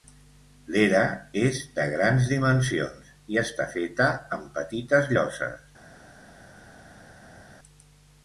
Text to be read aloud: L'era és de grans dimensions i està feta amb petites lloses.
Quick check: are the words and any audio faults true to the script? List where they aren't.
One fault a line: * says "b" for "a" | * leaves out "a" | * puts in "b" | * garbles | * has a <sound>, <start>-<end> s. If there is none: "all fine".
all fine